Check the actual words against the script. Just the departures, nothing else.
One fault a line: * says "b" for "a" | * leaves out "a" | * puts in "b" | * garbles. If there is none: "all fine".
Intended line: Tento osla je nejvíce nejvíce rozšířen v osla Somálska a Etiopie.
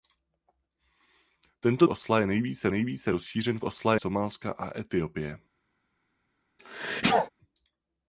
all fine